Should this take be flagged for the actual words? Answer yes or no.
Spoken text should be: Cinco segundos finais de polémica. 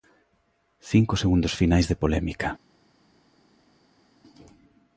no